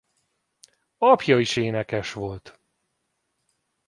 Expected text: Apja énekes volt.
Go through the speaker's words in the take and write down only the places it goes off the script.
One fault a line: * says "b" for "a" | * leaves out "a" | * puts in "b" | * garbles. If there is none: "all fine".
* puts in "is"